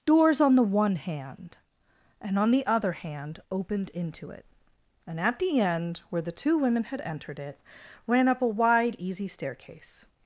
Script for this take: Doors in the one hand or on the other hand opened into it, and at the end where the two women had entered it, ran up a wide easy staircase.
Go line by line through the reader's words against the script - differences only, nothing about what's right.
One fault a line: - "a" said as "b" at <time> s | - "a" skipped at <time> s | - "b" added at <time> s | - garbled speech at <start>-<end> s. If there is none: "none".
- "in" said as "on" at 0.4 s
- "or" said as "and" at 2.2 s